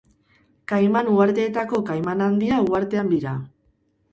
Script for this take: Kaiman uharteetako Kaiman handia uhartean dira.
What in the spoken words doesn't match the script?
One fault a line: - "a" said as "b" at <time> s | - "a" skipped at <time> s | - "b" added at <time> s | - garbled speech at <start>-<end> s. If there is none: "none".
none